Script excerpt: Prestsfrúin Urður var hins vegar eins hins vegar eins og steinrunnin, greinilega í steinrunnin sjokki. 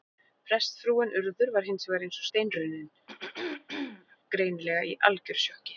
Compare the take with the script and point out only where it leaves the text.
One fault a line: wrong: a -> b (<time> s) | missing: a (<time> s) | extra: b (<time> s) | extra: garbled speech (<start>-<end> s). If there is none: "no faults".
missing: hins vegar eins (2.2 s)
wrong: steinrunnin -> algjöru (5.1 s)